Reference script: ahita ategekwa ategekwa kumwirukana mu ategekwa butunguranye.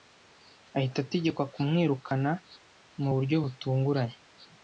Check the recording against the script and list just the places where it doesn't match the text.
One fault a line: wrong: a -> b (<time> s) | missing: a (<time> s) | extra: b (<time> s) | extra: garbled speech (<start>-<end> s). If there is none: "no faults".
missing: ategekwa (1.4 s)
wrong: ategekwa -> buryo (3.1 s)